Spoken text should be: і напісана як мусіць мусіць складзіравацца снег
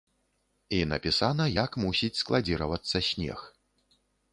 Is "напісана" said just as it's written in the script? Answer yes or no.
yes